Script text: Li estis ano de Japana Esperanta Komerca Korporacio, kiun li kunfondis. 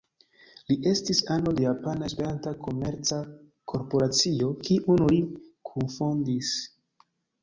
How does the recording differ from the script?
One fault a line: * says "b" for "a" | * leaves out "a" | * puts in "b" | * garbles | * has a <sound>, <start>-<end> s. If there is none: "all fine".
all fine